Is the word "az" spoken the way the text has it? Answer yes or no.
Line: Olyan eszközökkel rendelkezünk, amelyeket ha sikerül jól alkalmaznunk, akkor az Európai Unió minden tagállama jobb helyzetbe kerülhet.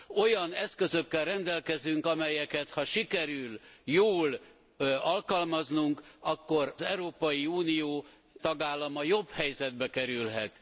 no